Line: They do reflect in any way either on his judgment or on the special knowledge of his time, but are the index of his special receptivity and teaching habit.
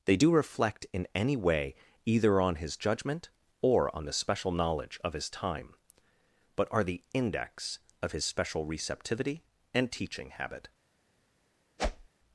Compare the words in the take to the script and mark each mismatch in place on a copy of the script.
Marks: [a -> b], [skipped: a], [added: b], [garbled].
They do reflect in any way either on his judgment or on the special knowledge of his time, but are the index of his special receptivity and teaching habit.